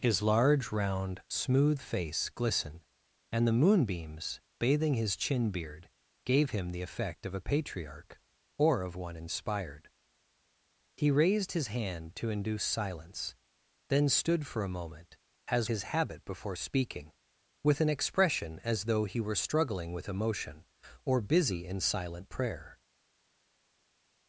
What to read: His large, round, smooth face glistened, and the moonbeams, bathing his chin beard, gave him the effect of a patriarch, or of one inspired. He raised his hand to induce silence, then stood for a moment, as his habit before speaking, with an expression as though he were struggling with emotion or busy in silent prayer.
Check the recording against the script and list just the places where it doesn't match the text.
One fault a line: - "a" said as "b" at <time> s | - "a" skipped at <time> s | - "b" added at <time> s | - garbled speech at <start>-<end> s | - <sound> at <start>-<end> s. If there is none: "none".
none